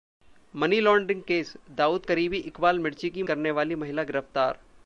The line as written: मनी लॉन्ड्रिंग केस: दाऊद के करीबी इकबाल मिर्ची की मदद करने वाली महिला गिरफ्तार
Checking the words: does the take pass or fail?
fail